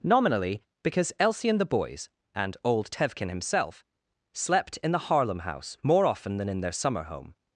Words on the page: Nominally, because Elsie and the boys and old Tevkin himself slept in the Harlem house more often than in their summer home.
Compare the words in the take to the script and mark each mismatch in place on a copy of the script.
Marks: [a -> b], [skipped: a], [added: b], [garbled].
Nominally, because Elsie and the boys and old Tevkin himself slept in the Harlem house more often than in their summer home.